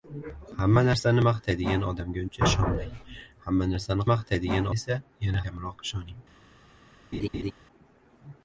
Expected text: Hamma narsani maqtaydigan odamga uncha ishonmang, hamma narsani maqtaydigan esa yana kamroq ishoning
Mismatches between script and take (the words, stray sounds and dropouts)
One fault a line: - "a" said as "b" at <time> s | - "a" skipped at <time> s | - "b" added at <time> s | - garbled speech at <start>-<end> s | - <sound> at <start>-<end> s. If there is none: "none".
- laugh at 7.1-7.5 s